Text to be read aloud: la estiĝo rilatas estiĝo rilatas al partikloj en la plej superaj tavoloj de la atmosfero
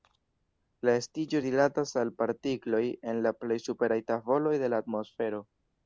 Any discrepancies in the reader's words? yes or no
yes